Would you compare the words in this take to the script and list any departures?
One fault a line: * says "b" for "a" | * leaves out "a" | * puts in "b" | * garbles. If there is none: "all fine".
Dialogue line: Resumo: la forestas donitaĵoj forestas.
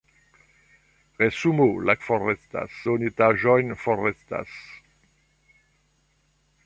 all fine